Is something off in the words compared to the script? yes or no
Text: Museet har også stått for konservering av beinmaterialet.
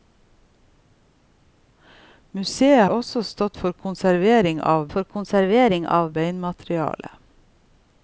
yes